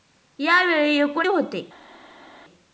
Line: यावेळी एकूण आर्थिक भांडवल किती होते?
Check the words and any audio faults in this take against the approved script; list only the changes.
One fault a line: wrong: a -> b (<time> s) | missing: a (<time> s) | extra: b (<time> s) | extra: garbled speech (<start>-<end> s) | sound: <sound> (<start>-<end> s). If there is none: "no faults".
missing: आर्थिक भांडवल किती (1.3 s)